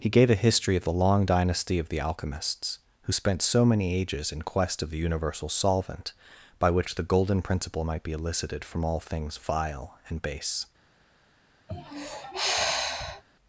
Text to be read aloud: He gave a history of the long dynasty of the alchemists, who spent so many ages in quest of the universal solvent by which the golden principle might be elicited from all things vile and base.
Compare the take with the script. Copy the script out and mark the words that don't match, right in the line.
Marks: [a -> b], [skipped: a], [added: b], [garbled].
He gave a history of the long dynasty of the alchemists, who spent so many ages in quest of the universal solvent by which the golden principle might be elicited from all things vile and base.